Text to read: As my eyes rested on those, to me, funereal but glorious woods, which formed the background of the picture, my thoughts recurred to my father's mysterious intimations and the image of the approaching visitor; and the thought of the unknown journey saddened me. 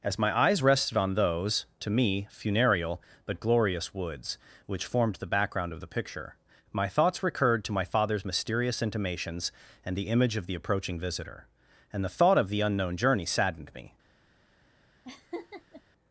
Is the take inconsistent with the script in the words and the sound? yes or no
yes